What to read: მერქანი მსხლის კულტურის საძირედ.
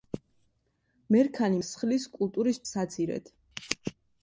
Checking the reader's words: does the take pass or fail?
pass